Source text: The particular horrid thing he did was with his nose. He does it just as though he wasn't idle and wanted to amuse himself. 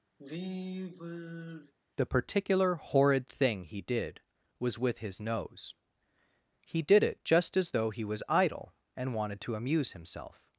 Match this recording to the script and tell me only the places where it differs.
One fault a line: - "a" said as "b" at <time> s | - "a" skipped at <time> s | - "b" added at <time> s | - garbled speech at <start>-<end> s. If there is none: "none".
- "does" said as "did" at 6.8 s
- "wasn't" said as "was" at 8.0 s